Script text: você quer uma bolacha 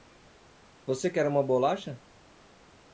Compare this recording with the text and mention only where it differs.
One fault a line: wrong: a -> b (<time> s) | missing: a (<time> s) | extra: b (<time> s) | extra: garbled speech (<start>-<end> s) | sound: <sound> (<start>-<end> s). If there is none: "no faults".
no faults